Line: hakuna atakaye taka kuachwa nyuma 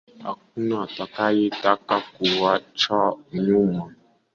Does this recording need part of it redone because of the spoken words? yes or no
no